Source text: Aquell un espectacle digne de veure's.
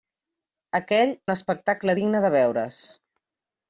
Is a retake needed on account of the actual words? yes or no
no